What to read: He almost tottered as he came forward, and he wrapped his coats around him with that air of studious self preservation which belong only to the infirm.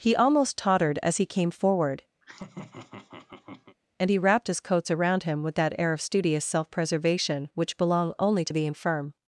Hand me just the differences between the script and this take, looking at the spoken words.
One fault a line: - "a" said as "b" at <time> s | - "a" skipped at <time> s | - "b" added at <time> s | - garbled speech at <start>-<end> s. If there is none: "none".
none